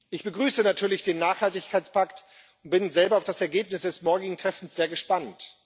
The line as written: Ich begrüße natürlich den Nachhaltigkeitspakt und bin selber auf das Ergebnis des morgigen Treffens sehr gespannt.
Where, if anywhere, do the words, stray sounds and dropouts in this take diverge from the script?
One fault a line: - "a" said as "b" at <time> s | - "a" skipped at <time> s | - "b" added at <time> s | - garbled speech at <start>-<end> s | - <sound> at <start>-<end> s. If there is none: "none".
none